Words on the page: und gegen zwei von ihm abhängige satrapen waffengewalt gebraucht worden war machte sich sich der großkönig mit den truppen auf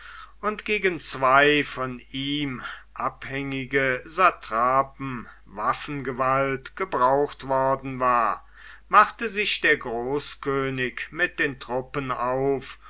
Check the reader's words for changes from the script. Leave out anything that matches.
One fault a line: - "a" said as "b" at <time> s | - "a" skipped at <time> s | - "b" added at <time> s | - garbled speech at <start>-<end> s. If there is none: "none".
- "sich" skipped at 9.6 s